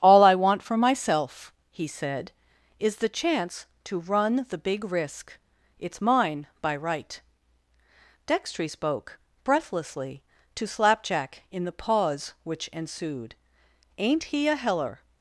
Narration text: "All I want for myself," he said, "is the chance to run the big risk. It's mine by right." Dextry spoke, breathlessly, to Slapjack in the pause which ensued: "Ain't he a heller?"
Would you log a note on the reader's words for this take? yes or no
no